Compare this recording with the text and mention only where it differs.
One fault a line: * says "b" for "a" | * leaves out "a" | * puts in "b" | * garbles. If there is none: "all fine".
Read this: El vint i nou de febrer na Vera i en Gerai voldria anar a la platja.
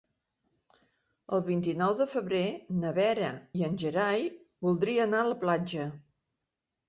all fine